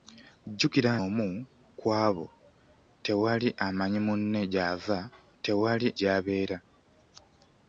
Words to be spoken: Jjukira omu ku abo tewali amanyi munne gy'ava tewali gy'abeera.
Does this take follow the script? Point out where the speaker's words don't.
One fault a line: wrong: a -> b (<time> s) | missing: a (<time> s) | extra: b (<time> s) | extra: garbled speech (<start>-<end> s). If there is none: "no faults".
no faults